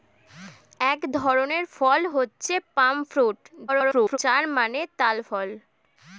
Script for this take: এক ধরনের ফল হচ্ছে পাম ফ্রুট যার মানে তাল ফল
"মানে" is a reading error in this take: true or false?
false